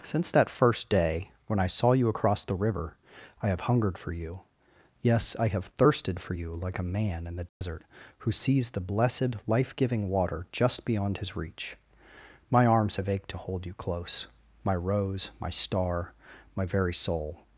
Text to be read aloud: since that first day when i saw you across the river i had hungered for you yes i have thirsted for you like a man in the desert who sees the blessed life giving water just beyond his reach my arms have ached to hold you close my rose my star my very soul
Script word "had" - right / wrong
wrong